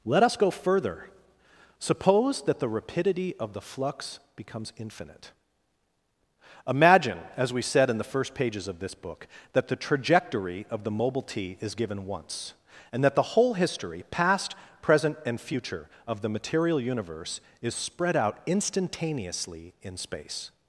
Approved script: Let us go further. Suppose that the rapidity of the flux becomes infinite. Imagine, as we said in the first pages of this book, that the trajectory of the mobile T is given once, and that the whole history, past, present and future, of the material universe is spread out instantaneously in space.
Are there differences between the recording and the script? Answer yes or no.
no